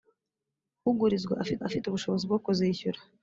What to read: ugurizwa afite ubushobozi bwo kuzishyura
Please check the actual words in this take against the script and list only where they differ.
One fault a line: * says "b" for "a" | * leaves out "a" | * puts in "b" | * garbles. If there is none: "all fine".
* puts in "afite"